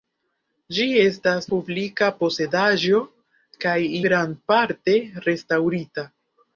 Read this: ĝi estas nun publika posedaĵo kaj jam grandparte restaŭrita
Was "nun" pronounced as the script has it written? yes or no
no